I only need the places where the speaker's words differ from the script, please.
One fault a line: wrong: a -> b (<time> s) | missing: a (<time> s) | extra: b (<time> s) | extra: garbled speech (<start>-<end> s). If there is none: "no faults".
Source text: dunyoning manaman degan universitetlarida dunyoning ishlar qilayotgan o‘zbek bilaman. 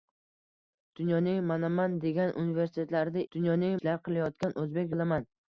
no faults